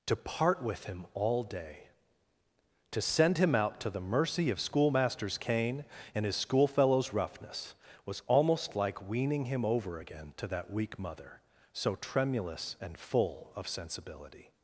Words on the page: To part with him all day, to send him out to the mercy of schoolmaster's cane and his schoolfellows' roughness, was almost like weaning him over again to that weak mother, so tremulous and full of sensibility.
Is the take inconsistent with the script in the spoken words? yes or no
no